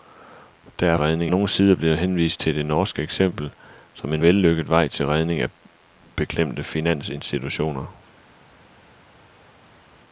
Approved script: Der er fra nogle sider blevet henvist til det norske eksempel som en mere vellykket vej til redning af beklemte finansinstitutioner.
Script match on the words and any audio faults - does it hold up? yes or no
no